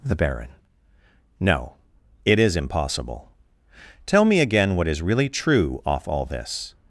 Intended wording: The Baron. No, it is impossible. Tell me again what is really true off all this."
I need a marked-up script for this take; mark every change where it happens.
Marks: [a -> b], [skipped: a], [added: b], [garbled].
The Baron. No, it is impossible. Tell me again what is really true off all this."